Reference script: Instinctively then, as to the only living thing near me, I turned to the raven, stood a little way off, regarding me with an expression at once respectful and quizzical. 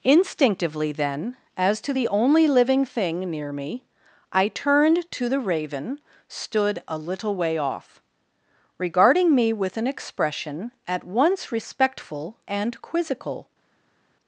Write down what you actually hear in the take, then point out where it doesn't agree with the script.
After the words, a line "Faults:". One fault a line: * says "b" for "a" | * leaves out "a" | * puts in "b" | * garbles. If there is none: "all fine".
Instinctively then, as to the only living thing near me, I turned to the raven, stood a little way off, regarding me with an expression at once respectful and quizzical.
Faults:
all fine